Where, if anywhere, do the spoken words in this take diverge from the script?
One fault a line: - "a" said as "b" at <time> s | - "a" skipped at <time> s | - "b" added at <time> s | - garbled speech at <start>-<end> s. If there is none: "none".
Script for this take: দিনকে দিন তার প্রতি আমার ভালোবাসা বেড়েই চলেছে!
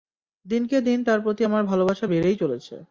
none